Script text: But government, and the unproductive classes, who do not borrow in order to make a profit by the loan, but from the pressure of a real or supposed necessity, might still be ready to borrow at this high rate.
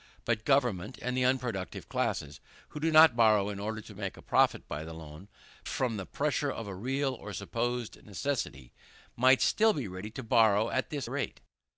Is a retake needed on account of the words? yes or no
yes